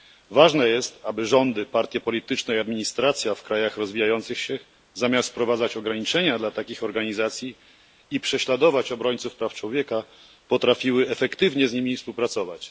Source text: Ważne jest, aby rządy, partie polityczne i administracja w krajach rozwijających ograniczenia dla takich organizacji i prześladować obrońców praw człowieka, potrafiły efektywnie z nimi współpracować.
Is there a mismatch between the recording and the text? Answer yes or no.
yes